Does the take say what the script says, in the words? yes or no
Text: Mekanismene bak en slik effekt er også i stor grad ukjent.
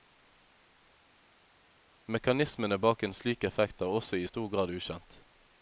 yes